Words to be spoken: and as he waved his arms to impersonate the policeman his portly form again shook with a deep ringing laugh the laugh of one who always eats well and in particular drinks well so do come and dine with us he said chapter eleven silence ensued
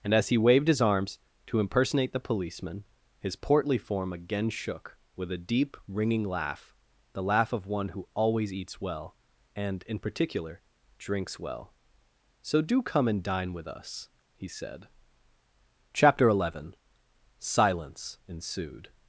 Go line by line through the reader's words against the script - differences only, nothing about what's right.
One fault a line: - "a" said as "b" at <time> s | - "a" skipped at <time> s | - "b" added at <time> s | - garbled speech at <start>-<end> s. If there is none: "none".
none